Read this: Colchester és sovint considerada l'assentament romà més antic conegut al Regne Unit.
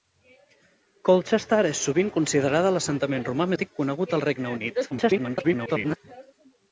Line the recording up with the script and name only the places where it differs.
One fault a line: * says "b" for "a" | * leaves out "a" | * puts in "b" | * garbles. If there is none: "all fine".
* leaves out "més"
* garbles